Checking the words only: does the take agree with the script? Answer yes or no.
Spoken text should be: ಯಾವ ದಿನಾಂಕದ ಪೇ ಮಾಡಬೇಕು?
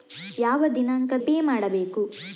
yes